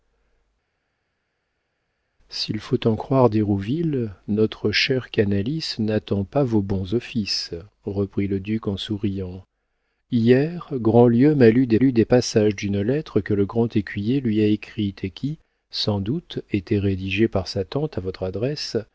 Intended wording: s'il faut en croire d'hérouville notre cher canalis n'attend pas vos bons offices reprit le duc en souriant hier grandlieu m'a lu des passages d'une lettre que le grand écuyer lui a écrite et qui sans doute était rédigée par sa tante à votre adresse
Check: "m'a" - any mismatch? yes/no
no